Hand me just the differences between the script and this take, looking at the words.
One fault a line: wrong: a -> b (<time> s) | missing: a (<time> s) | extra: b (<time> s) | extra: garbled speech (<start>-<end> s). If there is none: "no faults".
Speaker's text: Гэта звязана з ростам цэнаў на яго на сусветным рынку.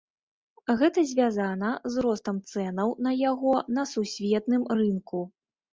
no faults